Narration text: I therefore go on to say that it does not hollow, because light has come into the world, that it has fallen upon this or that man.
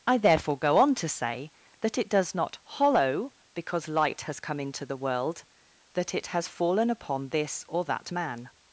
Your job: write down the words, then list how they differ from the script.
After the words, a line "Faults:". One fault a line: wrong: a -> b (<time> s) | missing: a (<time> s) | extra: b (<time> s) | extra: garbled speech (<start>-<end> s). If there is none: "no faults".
I therefore go on to say that it does not hollow, because light has come into the world, that it has fallen upon this or that man.
Faults:
no faults